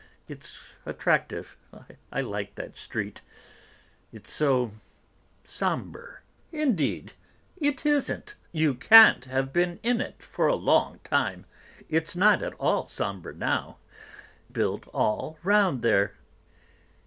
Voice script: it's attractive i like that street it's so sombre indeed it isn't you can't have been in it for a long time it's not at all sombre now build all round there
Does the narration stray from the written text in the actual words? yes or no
no